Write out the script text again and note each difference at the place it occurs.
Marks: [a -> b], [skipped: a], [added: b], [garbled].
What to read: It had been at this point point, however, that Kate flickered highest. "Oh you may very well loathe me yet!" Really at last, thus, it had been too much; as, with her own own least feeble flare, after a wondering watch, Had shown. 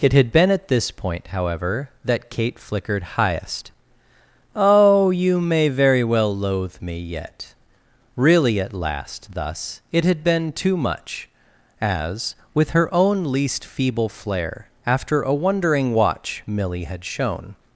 It had been at this point [skipped: point,] however, that Kate flickered highest. "Oh you may very well loathe me yet!" Really at last, thus, it had been too much; as, with her own [skipped: own] least feeble flare, after a wondering watch, [added: Milly] Had shown.